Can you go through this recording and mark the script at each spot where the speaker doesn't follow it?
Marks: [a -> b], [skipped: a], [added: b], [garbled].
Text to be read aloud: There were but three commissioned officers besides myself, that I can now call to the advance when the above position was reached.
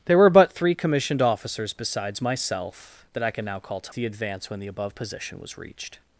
There were but three commissioned officers besides myself, that I can now call to the advance when the above position was reached.